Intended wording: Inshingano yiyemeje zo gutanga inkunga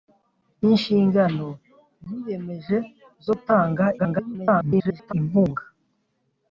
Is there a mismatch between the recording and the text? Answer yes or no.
yes